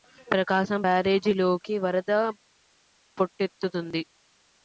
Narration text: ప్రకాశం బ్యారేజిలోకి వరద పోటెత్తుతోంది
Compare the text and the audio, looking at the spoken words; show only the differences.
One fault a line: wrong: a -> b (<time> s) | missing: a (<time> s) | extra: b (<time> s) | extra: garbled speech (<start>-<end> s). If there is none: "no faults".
no faults